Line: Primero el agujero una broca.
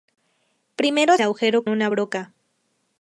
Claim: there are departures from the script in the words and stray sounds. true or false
false